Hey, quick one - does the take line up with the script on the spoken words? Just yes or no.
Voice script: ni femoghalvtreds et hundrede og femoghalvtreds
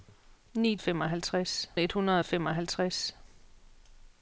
yes